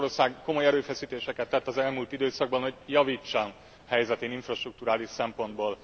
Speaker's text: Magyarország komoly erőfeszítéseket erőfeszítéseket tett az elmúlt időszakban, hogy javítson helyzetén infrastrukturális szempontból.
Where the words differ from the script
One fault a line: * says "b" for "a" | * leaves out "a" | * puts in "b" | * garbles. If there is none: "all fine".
* leaves out "erőfeszítéseket"